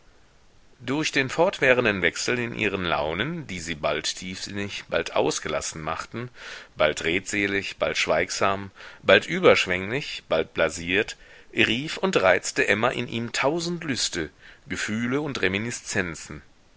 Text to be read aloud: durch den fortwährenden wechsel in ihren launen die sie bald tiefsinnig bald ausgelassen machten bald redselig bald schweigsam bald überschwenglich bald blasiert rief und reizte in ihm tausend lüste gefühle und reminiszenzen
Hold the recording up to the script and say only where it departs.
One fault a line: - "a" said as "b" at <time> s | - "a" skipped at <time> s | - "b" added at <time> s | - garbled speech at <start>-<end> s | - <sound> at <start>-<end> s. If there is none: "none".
- "emma" added at 12.7 s